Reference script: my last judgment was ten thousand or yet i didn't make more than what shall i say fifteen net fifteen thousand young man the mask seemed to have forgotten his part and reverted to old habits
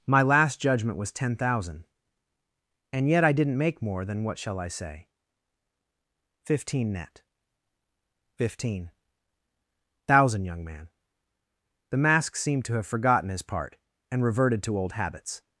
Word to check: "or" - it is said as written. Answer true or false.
false